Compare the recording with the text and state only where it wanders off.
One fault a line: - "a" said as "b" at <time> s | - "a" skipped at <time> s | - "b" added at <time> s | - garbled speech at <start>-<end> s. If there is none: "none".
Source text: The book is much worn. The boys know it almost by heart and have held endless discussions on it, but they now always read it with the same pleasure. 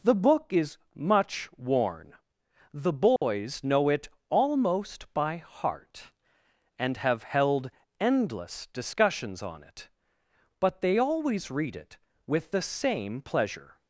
- "now" skipped at 11.0 s